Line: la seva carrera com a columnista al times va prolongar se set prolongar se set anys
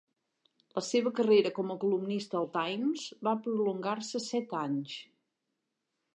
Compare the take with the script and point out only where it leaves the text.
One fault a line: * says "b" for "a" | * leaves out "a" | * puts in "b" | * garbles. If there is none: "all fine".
* leaves out "prolongar se set"